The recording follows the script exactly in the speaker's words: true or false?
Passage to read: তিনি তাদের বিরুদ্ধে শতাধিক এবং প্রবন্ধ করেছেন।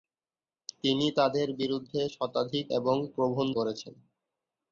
true